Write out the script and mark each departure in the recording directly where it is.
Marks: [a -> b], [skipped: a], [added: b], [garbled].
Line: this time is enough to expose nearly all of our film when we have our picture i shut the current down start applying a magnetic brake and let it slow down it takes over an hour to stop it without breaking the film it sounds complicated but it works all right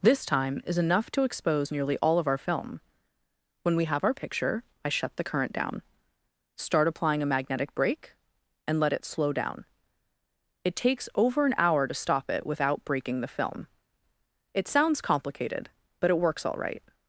this time is enough to expose nearly all of our film when we have our picture i shut the current down start applying a magnetic brake and let it slow down it takes over an hour to stop it without breaking the film it sounds complicated but it works all right